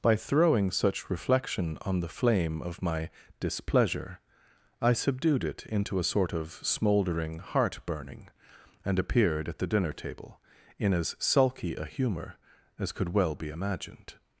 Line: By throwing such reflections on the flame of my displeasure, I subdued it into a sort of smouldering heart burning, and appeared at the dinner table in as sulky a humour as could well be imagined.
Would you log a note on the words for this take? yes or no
yes